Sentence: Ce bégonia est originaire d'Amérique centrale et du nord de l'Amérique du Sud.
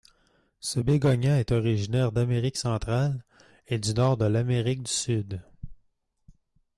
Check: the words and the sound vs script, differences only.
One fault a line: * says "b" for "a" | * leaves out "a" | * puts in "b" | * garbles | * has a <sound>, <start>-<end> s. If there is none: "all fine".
all fine